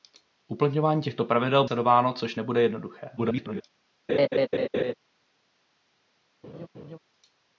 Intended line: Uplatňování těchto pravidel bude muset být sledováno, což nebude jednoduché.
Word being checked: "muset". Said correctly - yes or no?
no